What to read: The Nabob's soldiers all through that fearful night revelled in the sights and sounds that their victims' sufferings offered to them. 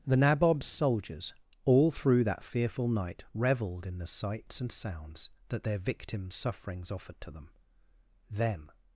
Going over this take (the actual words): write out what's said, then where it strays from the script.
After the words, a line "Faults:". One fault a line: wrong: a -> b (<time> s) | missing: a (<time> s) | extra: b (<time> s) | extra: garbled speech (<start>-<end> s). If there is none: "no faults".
The Nabob's soldiers all through that fearful night revelled in the sights and sounds that their victims' sufferings offered to them them.
Faults:
extra: them (8.3 s)